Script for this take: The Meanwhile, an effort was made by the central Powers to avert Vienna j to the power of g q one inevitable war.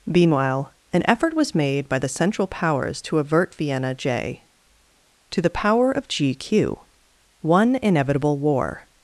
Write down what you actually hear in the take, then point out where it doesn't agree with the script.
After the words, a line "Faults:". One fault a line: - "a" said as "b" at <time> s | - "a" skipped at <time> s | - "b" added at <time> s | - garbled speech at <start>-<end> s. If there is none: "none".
Meanwhile, an effort was made by the central Powers to avert Vienna j to the power of g q one inevitable war.
Faults:
- "The" skipped at 0.1 s